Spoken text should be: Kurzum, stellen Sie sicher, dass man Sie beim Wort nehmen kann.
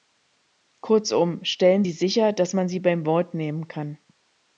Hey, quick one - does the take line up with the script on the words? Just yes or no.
yes